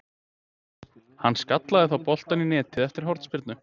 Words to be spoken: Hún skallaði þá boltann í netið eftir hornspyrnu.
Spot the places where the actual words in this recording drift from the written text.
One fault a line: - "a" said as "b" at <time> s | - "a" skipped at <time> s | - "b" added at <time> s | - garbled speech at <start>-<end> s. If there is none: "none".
- "Hún" said as "Hann" at 1.2 s